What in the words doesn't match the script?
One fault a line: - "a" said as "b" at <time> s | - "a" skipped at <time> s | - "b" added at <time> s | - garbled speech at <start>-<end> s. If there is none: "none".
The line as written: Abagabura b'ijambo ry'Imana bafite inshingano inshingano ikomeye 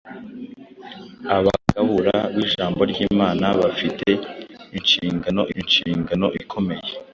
none